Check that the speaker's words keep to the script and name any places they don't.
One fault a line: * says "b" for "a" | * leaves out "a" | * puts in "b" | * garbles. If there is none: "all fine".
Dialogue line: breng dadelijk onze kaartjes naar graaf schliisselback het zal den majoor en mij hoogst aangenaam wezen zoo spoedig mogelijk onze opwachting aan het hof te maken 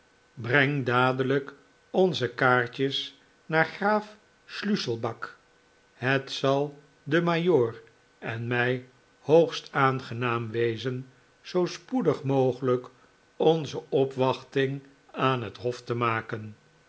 all fine